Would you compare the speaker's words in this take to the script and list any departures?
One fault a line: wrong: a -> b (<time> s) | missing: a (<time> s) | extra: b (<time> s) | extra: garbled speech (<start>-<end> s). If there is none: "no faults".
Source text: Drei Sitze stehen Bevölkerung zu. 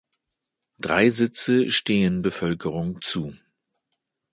no faults